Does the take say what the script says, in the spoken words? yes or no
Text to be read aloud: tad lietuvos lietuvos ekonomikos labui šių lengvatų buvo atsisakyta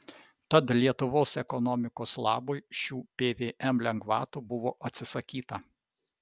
no